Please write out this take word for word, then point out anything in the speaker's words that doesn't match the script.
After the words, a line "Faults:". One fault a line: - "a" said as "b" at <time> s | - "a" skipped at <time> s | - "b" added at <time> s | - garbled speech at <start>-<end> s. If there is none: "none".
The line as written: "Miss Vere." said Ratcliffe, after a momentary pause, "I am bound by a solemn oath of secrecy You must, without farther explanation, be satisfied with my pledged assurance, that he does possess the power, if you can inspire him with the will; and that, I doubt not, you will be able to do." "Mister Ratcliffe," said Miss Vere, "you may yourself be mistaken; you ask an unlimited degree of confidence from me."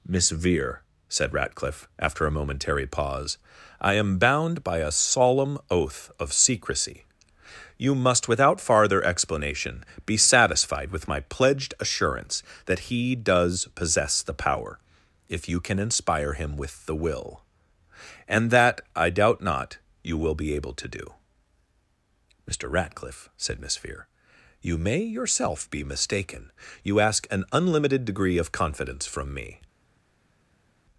"Miss Vere." said Ratcliffe, after a momentary pause, "I am bound by a solemn oath of secrecy You must, without farther explanation, be satisfied with my pledged assurance, that he does possess the power, if you can inspire him with the will; and that, I doubt not, you will be able to do." "Mister Ratcliffe," said Miss Vere, "you may yourself be mistaken; you ask an unlimited degree of confidence from me."
Faults:
none